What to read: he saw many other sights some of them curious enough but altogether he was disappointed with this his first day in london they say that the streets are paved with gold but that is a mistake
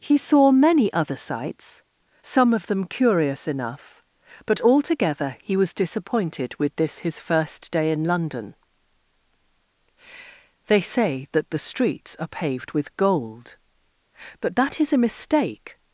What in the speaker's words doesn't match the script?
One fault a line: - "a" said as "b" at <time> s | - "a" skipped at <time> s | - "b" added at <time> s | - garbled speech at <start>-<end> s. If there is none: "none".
none